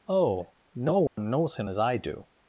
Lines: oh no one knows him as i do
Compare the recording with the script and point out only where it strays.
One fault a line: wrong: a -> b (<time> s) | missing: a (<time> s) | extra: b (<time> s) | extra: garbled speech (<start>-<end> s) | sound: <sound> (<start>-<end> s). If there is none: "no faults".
sound: dropout (1.1-1.2 s)